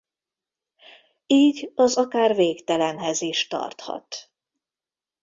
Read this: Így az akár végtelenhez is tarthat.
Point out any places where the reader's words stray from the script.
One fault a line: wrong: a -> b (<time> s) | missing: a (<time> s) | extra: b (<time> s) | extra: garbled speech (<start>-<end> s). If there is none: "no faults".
no faults